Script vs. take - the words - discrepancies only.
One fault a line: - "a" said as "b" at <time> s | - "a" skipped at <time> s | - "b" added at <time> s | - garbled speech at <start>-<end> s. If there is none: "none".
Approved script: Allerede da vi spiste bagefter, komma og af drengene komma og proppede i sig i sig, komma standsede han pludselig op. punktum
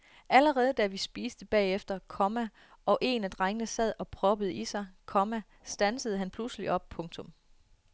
- "en" added at 3.0 s
- "komma" said as "sad" at 3.7 s
- "i sig" skipped at 4.9 s